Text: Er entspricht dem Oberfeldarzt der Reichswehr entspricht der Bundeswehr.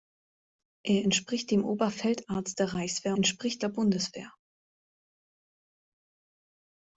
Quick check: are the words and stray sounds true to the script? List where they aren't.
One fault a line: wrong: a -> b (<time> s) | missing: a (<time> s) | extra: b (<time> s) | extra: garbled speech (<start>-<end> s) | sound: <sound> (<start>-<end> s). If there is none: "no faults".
no faults